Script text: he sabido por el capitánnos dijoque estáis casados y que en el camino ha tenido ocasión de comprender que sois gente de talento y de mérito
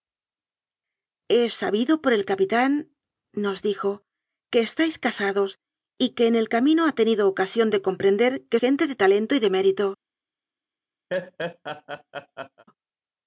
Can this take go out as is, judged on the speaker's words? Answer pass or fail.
fail